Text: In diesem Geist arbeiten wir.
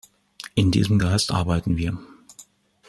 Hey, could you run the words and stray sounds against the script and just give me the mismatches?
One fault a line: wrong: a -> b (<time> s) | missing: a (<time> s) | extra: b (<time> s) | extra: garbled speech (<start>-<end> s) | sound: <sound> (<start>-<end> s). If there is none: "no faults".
no faults